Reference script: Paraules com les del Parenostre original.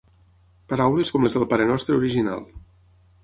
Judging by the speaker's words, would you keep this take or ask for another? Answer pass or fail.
pass